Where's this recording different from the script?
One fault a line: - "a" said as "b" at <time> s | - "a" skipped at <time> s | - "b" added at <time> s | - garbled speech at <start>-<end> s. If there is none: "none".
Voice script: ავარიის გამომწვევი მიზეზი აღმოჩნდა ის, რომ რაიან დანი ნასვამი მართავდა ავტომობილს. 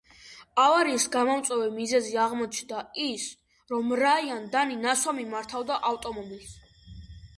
none